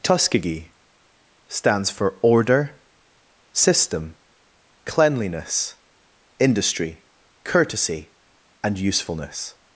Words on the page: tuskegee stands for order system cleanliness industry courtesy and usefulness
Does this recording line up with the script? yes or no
yes